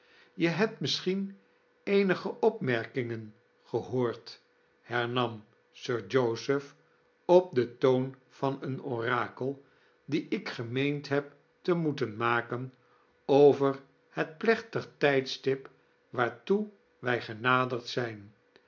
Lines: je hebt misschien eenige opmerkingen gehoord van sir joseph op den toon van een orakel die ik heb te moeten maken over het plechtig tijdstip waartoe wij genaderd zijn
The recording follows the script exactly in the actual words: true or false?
false